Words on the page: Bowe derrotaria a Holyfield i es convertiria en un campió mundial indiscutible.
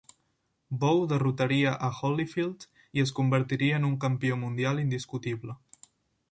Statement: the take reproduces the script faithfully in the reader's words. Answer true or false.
true